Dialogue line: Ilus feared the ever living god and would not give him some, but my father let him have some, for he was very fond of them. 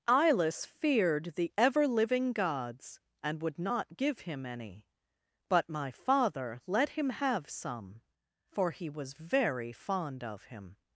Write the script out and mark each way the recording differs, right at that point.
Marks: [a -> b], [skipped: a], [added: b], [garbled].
Ilus feared the ever living [god -> gods] and would not give him [some, -> any] but my father let him have some, for he was very fond of [them. -> him]